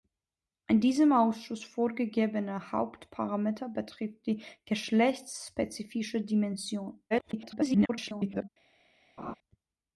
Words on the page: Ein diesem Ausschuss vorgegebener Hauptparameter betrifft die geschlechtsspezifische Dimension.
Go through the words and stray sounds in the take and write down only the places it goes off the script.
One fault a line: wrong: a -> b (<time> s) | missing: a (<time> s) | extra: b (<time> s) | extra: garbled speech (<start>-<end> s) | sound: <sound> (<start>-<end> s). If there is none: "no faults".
extra: garbled speech (7.1-8.5 s)
sound: laugh (9.2-9.4 s)